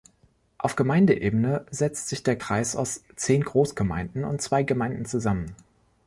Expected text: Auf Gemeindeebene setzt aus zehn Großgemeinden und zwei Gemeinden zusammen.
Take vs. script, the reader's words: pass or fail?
fail